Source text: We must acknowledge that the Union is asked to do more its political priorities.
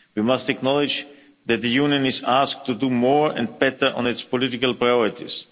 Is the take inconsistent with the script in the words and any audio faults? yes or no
yes